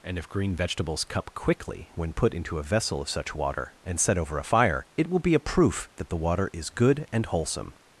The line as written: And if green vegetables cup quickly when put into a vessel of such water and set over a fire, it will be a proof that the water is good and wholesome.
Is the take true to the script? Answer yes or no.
yes